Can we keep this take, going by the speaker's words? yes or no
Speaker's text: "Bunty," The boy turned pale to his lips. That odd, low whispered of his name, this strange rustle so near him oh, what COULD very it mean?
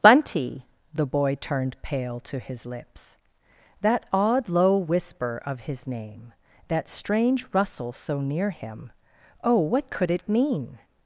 no